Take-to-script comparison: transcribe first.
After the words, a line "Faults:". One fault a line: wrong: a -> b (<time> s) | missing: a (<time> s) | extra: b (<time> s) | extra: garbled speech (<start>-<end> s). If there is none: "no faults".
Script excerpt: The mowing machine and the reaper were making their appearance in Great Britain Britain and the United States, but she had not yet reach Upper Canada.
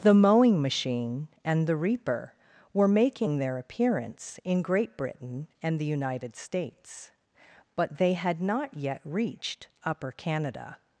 The mowing machine and the reaper were making their appearance in Great Britain and the United States, but they had not yet reached Upper Canada.
Faults:
missing: Britain (5.5 s)
wrong: she -> they (8.0 s)
wrong: reach -> reached (9.1 s)